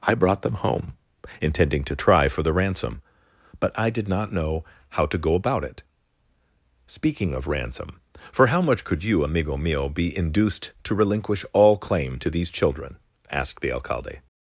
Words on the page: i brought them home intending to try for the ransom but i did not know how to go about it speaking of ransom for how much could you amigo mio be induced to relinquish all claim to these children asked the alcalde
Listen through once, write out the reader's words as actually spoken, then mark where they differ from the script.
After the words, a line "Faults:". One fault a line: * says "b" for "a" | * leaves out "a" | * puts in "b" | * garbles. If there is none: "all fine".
i brought them home intending to try for the ransom but i did not know how to go about it speaking of ransom for how much could you amigo mio be induced to relinquish all claim to these children asked the alcalde
Faults:
all fine